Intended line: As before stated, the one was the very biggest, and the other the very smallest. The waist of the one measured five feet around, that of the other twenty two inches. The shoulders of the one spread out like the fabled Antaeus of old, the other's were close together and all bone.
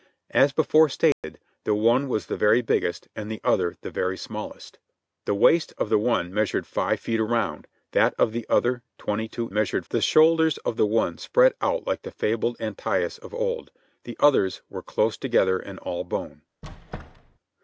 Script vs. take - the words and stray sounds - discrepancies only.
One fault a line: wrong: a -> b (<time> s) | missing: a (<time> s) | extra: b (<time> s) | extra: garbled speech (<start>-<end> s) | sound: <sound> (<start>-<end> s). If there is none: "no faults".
sound: dropout (1.1-1.2 s)
wrong: inches -> measured (9.5 s)
sound: squeak (16.6-17.4 s)